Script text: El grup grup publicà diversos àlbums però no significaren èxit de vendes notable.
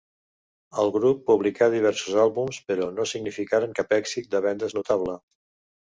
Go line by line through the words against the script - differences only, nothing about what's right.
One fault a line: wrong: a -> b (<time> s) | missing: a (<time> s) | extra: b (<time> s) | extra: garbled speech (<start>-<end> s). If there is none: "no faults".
missing: grup (1.2 s)
extra: cap (3.8 s)